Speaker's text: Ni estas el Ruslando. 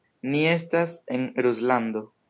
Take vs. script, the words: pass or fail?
fail